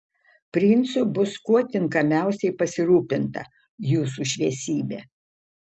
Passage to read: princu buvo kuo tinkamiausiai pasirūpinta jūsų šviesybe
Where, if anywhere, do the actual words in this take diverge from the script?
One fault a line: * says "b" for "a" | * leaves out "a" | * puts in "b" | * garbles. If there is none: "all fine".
* says "bus" for "buvo"